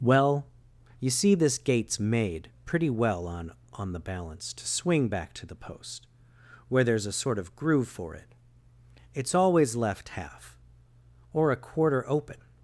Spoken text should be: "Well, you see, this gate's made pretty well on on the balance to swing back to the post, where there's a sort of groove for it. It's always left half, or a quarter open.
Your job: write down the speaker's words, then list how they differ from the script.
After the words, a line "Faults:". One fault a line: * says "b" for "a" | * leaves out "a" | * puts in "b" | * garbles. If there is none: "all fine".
"Well, you see, this gate's made pretty well on on the balance to swing back to the post, where there's a sort of groove for it. It's always left half, or a quarter open.
Faults:
all fine